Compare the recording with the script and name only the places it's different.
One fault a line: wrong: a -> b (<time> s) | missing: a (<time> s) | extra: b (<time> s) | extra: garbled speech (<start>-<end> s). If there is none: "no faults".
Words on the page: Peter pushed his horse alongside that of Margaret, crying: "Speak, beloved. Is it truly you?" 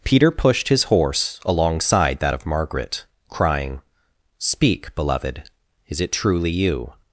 no faults